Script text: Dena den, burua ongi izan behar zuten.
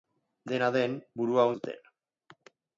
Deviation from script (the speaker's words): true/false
true